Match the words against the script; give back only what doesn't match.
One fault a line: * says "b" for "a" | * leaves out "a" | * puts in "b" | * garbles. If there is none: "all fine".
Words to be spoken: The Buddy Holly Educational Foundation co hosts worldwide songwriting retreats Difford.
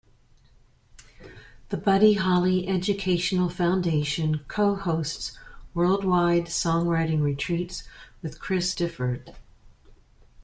* puts in "with Chris"